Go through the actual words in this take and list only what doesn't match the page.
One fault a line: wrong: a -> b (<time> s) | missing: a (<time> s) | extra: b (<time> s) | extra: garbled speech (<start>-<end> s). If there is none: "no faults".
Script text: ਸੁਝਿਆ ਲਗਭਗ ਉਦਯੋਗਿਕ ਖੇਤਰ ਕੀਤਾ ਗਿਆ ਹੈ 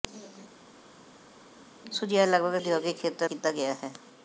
no faults